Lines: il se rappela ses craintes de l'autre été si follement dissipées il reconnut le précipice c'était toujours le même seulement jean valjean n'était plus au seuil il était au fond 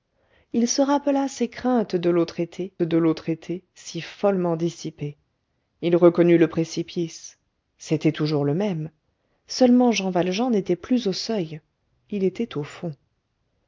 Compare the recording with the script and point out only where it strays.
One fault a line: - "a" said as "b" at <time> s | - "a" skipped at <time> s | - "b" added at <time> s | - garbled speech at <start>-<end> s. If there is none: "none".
- "de l'autre été" added at 2.8 s